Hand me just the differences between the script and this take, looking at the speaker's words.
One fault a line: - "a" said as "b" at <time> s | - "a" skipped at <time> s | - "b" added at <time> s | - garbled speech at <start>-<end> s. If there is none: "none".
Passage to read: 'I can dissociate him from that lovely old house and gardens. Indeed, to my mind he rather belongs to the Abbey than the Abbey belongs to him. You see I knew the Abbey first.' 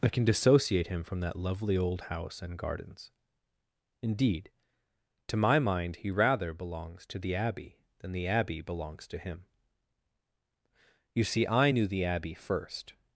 none